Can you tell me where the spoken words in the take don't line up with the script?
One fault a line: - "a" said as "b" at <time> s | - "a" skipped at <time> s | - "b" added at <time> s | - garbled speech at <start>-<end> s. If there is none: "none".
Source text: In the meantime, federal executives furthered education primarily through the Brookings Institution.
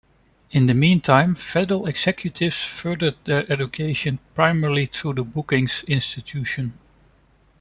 - "their" added at 3.2 s